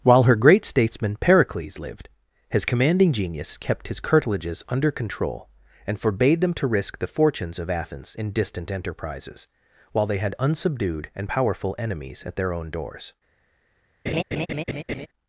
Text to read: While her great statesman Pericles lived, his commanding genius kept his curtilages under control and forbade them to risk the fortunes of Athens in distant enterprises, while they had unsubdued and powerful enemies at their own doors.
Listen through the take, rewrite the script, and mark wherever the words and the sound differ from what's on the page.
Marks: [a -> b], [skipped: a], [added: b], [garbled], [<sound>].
While her great statesman Pericles lived, his commanding genius kept his curtilages under control and forbade them to risk the fortunes of Athens in distant enterprises, while they had unsubdued and powerful enemies at their own doors. [laugh]